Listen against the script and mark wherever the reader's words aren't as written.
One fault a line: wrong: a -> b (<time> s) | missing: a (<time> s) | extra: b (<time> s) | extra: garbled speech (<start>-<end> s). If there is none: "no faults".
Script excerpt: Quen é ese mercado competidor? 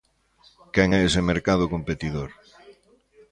no faults